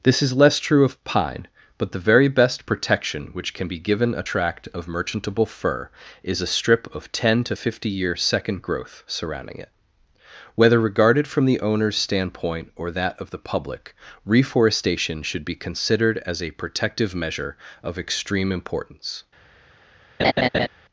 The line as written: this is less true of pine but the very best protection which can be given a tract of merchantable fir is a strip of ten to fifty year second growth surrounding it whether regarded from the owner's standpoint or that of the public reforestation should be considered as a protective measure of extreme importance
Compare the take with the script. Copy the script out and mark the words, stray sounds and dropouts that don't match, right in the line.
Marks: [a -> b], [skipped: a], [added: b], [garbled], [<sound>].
this is less true of pine but the very best protection which can be given a tract of merchantable fir is a strip of ten to fifty year second growth surrounding it whether regarded from the owner's standpoint or that of the public reforestation should be considered as a protective measure of extreme importance [laugh]